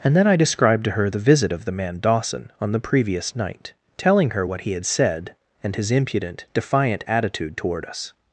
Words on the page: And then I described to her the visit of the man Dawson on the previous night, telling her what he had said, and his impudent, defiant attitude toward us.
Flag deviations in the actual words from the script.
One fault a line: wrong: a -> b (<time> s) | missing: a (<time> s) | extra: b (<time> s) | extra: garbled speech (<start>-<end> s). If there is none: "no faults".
no faults